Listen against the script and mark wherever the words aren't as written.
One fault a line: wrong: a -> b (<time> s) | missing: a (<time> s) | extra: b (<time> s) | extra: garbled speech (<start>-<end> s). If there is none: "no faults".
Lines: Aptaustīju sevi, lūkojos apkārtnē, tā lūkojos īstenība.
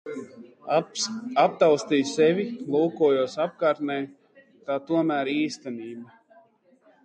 wrong: lūkojos -> tomēr (4.9 s)